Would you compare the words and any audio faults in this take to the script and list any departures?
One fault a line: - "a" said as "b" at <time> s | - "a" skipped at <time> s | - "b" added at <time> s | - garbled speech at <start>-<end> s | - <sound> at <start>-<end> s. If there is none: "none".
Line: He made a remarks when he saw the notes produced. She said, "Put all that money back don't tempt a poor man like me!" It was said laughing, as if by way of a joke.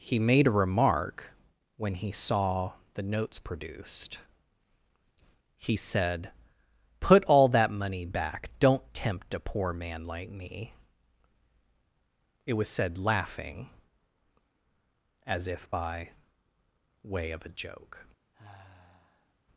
- "remarks" said as "remark" at 0.5 s
- "She" said as "He" at 5.5 s
- sigh at 18.3-19.3 s